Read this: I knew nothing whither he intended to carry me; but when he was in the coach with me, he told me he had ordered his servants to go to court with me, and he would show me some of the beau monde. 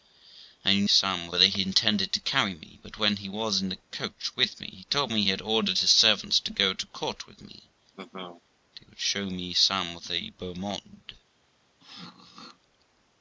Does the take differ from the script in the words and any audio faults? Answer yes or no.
yes